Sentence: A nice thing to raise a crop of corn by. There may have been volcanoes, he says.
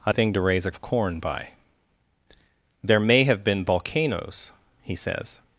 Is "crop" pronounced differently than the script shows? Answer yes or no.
yes